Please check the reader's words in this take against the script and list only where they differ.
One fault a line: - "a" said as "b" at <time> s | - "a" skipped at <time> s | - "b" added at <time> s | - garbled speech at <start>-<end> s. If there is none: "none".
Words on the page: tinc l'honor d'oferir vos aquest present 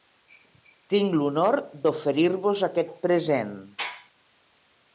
none